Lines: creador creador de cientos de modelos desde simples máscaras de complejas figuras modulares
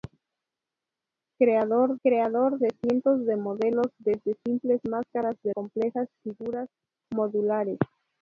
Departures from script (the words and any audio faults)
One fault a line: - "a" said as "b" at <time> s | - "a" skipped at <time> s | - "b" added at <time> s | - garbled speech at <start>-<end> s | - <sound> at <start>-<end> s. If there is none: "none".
none